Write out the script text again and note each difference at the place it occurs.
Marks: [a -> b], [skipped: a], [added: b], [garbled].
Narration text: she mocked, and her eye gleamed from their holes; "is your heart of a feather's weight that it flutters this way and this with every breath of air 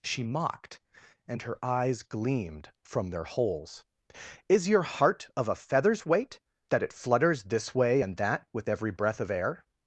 she mocked, and her [eye -> eyes] gleamed from their holes; "is your heart of a feather's weight that it flutters this way and [this -> that] with every breath of air